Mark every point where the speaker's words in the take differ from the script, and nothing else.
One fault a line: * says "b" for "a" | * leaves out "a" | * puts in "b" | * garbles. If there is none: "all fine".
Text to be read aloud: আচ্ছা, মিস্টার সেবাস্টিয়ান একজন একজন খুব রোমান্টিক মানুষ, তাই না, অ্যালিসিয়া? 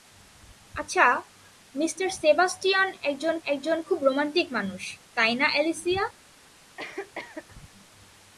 all fine